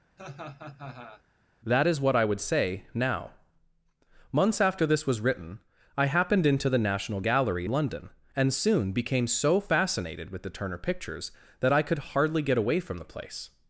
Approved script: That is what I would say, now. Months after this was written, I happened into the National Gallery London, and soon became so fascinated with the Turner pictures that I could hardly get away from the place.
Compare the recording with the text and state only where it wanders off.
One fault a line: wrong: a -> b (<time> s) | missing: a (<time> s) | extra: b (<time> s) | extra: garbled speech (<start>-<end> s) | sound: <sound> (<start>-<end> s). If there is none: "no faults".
sound: laugh (0.2-1.2 s)